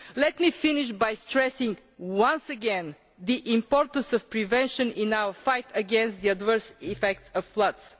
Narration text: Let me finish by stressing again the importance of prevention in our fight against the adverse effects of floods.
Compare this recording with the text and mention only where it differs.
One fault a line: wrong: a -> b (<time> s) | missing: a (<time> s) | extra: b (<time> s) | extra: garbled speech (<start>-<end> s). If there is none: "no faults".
extra: once (2.0 s)